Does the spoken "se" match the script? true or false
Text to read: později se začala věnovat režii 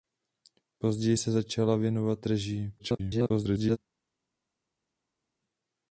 true